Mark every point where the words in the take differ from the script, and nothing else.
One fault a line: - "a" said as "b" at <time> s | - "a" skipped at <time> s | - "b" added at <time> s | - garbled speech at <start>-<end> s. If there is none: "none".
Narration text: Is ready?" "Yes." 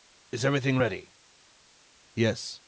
- "everything" added at 0.5 s